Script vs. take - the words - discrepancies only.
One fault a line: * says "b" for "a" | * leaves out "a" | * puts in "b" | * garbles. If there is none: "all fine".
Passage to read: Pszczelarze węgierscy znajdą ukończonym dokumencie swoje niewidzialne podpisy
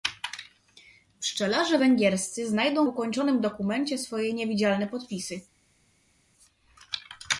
all fine